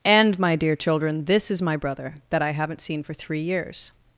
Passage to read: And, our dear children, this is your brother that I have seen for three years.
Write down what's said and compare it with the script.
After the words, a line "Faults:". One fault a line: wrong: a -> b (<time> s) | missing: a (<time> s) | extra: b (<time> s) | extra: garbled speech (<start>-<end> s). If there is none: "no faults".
And, my dear children, this is my brother that I haven't seen for three years.
Faults:
wrong: our -> my (0.4 s)
wrong: your -> my (1.6 s)
wrong: have -> haven't (2.5 s)